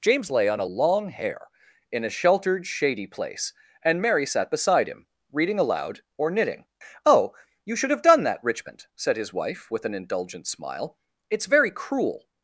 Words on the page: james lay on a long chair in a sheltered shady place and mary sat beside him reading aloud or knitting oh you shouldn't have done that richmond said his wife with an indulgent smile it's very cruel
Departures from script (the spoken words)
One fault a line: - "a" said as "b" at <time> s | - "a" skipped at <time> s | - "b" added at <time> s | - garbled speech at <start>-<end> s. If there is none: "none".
- "chair" said as "hair" at 1.1 s
- "shouldn't" said as "should" at 7.8 s